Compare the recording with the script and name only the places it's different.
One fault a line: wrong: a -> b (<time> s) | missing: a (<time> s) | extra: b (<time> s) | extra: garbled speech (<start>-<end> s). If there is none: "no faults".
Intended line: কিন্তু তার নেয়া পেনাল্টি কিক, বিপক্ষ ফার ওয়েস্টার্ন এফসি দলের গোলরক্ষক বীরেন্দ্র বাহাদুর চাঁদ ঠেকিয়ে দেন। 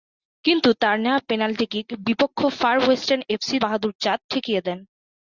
missing: দলের গোলরক্ষক বীরেন্দ্র (3.6 s)